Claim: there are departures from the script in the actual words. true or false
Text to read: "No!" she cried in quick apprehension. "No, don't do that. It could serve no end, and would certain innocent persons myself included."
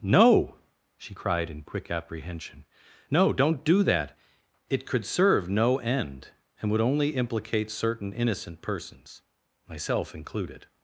true